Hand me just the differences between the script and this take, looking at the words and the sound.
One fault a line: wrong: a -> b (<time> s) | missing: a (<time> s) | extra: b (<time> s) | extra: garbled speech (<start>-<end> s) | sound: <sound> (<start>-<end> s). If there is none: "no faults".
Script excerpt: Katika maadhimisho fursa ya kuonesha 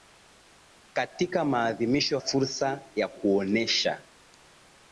no faults